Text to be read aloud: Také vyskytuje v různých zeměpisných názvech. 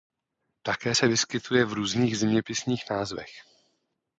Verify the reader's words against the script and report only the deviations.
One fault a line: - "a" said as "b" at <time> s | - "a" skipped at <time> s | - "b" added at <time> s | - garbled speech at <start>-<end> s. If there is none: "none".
- "se" added at 0.9 s